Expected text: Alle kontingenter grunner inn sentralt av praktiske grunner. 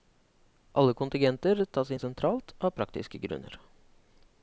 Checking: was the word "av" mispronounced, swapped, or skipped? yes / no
no